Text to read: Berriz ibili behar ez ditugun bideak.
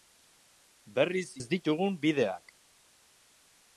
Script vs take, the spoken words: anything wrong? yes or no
yes